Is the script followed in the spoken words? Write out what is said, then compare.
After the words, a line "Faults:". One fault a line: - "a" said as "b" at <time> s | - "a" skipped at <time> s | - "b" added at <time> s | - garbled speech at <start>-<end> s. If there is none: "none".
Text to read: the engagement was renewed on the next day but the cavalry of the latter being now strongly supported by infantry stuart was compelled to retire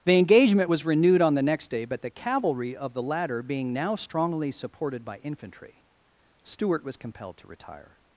the engagement was renewed on the next day but the cavalry of the latter being now strongly supported by infantry stuart was compelled to retire
Faults:
none